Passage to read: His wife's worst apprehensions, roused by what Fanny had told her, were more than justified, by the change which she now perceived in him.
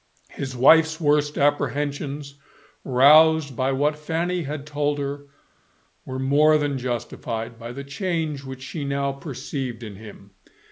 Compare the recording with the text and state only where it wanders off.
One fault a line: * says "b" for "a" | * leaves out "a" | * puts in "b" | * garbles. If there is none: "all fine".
all fine